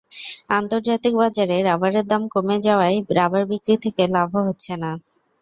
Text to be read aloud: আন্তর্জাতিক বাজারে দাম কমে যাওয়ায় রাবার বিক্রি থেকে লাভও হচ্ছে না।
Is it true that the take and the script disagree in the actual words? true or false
true